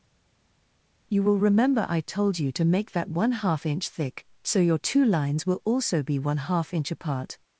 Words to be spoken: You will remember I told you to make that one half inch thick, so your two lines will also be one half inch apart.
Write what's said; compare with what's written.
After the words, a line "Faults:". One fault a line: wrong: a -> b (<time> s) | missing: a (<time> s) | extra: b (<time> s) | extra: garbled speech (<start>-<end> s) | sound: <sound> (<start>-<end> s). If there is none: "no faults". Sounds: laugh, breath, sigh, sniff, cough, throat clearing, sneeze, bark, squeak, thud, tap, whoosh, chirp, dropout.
You will remember I told you to make that one half inch thick, so your two lines will also be one half inch apart.
Faults:
no faults